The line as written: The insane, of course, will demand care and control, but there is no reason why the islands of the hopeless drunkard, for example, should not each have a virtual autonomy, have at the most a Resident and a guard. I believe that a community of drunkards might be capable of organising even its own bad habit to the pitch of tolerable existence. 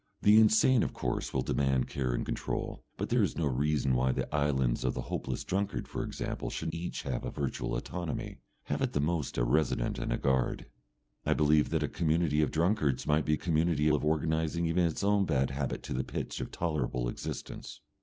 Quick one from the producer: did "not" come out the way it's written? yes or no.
no